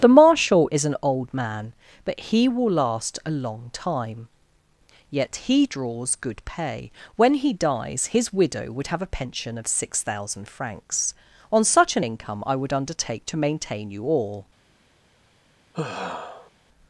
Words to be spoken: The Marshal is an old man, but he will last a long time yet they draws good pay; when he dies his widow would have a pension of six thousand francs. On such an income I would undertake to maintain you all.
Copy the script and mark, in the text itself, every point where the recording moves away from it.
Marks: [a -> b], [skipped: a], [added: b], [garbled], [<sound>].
The Marshal is an old man, but he will last a long time yet [they -> he] draws good pay; when he dies his widow would have a pension of six thousand francs. On such an income I would undertake to maintain you all. [sigh]